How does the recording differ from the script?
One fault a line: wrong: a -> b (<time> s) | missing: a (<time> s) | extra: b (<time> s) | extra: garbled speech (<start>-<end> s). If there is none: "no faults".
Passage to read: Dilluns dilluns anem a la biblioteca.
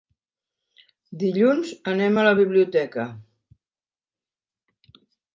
missing: dilluns (1.7 s)